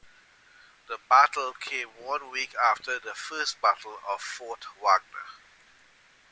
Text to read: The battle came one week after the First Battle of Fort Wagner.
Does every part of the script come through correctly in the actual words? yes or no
yes